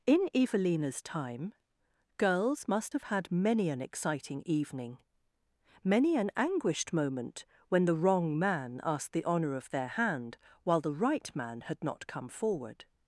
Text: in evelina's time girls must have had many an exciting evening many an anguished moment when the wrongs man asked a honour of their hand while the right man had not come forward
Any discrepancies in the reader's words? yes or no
yes